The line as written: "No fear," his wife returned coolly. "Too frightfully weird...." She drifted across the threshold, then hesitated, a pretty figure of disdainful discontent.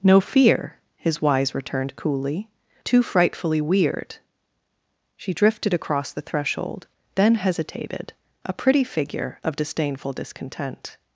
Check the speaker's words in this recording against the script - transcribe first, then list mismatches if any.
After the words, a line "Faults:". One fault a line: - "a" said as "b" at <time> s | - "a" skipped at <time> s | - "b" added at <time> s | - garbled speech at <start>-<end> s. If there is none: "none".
"No fear," his wise returned coolly. "Too frightfully weird...." She drifted across the threshold, then hesitated, a pretty figure of disdainful discontent.
Faults:
- "wife" said as "wise" at 1.2 s